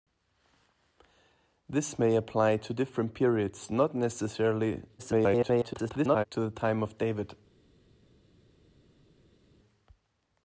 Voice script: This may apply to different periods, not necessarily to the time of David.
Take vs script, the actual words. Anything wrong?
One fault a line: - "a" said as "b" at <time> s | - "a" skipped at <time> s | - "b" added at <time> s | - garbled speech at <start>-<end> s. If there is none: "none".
- garbled speech at 5.0-6.2 s